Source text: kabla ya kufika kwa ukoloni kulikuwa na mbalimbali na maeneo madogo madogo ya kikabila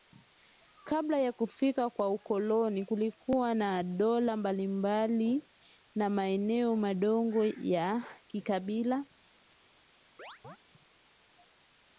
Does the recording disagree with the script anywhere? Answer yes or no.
yes